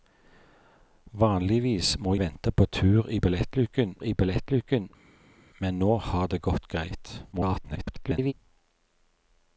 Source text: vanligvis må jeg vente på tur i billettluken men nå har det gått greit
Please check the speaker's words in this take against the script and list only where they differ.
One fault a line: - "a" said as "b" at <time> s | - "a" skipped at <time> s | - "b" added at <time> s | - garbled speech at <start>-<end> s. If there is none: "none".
- "jeg" skipped at 2.1 s
- "i billettluken" added at 4.0 s
- garbled speech at 7.3-8.3 s